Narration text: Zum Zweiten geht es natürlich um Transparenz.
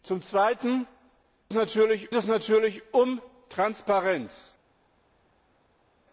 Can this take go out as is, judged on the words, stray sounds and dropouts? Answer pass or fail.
fail